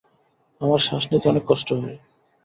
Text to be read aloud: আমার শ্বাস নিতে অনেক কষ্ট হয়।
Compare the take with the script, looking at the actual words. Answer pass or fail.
pass